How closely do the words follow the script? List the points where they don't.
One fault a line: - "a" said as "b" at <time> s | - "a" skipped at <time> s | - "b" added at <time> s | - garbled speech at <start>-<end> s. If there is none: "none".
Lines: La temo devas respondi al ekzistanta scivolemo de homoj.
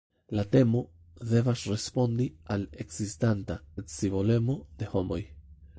none